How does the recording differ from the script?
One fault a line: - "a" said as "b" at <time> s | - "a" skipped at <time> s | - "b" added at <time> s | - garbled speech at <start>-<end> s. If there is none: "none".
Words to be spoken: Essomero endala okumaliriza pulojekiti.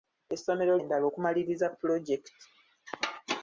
none